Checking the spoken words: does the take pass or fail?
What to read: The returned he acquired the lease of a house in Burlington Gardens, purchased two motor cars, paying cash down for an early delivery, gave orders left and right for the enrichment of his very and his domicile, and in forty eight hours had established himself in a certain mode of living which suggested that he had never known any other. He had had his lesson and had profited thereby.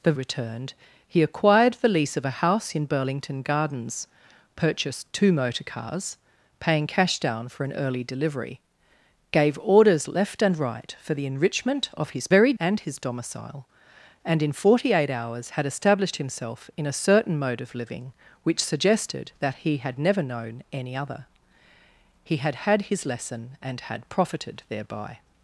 pass